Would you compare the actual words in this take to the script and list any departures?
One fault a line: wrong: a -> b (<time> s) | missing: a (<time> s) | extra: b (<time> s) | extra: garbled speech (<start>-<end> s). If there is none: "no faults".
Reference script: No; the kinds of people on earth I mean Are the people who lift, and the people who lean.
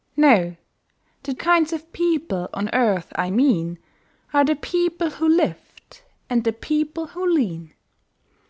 no faults